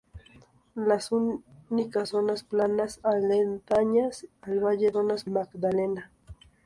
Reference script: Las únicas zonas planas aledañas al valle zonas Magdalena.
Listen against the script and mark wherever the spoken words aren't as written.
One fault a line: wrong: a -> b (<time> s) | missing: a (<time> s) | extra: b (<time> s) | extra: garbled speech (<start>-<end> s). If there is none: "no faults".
no faults